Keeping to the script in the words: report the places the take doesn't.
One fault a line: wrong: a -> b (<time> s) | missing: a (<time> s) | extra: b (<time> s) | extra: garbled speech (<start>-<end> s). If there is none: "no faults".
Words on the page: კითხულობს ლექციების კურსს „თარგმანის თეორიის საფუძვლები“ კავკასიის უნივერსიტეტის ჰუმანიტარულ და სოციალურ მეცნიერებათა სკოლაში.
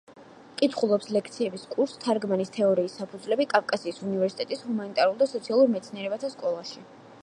no faults